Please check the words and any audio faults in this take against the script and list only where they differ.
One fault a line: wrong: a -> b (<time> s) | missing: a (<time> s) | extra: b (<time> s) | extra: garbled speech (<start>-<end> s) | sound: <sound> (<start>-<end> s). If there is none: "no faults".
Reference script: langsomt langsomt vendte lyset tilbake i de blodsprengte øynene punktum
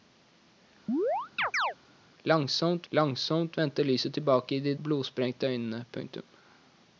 sound: chirp (0.9-1.7 s)